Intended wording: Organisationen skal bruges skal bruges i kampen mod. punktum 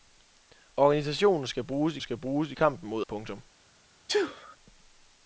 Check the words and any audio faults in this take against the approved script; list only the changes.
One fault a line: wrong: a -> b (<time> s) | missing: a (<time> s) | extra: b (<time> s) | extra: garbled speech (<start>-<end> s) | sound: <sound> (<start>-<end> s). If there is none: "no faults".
sound: sneeze (4.1-4.6 s)